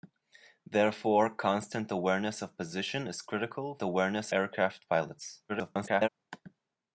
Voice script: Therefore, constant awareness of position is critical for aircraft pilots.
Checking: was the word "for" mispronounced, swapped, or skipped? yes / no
yes